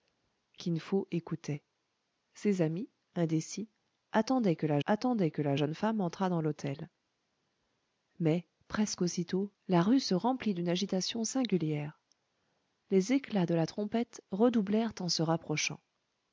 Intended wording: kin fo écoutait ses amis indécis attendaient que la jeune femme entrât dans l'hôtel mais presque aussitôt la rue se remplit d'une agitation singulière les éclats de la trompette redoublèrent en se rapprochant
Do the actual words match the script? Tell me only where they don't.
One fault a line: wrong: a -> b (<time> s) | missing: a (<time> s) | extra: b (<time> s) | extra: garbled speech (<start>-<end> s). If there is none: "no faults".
extra: attendaient que la (4.8 s)